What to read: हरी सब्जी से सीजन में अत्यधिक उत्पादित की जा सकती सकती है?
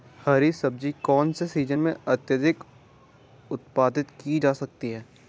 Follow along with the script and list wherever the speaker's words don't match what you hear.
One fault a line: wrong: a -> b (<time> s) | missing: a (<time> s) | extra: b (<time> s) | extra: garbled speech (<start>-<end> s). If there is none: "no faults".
extra: कौन (1.0 s)
missing: सकती (4.9 s)